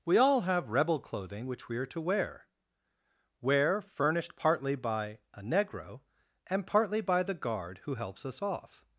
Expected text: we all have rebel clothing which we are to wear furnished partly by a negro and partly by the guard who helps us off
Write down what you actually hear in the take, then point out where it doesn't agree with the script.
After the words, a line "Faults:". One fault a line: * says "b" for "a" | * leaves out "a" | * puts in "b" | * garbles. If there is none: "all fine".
we all have rebel clothing which we are to wear wear furnished partly by a negro and partly by the guard who helps us off
Faults:
* puts in "wear"